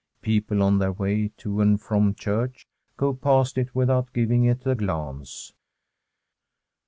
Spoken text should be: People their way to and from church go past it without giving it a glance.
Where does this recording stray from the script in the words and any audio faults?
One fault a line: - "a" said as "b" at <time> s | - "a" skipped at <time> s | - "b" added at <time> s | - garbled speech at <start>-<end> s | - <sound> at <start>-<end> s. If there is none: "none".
- "on" added at 0.6 s